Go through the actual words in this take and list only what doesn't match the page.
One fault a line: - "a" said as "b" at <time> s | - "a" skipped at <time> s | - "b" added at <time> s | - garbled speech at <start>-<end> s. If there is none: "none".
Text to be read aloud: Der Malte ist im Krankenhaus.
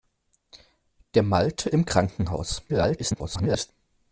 - "ist" skipped at 1.7 s
- garbled speech at 2.7-3.7 s